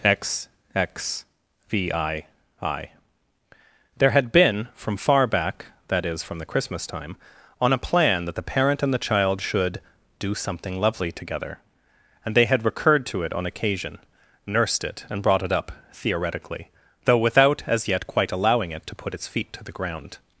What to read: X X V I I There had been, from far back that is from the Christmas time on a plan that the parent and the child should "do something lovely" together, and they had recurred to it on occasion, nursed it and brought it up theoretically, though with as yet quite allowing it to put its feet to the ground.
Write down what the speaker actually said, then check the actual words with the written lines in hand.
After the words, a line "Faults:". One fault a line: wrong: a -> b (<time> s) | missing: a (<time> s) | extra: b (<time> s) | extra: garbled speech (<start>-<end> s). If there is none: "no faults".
X X V I I There had been, from far back that is from the Christmas time on a plan that the parent and the child should "do something lovely" together, and they had recurred to it on occasion, nursed it and brought it up theoretically, though without as yet quite allowing it to put its feet to the ground.
Faults:
wrong: with -> without (17.2 s)